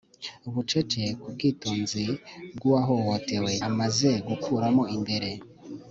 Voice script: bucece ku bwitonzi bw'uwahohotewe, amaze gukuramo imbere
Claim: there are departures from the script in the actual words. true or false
false